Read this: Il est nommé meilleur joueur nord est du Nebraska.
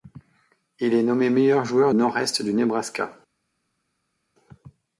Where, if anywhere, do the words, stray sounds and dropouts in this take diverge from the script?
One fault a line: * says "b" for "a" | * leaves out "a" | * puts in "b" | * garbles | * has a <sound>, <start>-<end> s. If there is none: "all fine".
all fine